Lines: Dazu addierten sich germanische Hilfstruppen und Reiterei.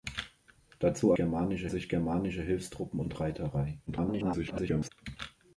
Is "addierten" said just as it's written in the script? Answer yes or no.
no